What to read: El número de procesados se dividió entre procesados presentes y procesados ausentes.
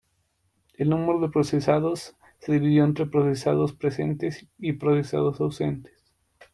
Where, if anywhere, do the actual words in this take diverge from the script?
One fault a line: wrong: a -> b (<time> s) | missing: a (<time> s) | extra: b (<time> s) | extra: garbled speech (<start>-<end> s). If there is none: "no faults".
no faults